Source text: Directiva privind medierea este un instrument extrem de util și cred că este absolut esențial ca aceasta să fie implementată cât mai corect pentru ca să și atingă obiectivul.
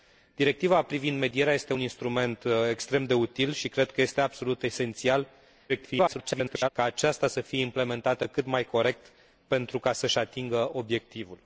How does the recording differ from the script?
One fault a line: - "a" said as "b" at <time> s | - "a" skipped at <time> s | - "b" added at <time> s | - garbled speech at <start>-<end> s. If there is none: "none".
- garbled speech at 5.7-6.7 s